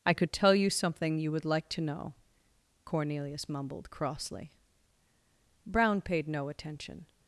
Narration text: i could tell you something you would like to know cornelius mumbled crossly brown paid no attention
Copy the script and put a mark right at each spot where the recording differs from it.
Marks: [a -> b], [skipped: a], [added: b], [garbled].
i could tell you something you would like to know cornelius mumbled crossly brown paid no attention